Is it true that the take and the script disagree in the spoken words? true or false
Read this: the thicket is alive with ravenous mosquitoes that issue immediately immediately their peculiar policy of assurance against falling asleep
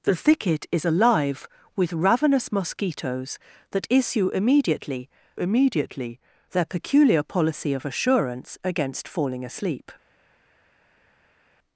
false